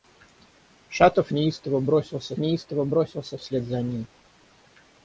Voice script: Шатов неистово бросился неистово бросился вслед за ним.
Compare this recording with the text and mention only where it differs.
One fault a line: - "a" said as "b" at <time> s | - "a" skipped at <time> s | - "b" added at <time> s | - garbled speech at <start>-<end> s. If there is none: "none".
none